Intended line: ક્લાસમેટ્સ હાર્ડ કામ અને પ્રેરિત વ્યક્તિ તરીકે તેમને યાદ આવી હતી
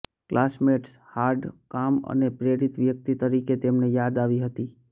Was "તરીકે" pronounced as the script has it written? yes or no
yes